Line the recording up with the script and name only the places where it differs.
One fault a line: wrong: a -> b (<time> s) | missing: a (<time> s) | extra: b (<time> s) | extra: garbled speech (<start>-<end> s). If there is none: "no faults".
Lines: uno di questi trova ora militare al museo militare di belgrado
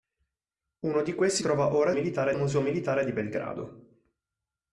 no faults